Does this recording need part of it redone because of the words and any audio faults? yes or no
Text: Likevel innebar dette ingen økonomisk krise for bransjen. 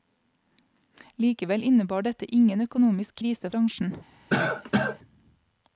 yes